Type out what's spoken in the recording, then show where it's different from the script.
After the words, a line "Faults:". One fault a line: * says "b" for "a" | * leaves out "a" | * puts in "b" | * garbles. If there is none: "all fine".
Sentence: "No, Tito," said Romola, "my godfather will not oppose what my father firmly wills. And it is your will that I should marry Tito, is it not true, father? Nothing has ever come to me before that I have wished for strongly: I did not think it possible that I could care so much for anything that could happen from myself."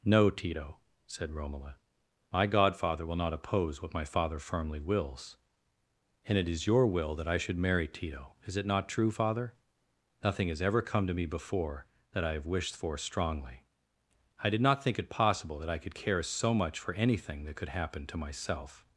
"No, Tito," said Romola, "my godfather will not oppose what my father firmly wills. And it is your will that I should marry Tito, is it not true, father? Nothing has ever come to me before that I have wished for strongly: I did not think it possible that I could care so much for anything that could happen to myself."
Faults:
* says "to" for "from"